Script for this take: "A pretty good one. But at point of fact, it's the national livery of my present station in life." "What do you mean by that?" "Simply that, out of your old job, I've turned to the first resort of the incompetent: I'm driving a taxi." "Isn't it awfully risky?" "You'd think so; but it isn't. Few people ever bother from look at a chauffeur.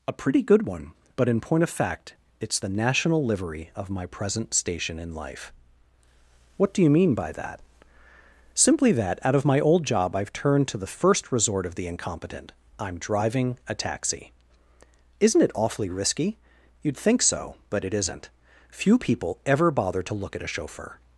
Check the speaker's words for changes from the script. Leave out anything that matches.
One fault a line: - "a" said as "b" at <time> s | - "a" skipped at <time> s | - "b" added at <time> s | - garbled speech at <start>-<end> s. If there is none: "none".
- "at" said as "in" at 1.3 s
- "your" said as "my" at 9.4 s
- "from" said as "to" at 20.0 s